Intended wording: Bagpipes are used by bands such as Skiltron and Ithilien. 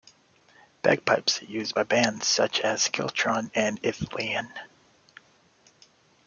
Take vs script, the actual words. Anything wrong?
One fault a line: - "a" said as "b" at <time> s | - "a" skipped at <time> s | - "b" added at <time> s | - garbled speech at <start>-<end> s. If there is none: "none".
none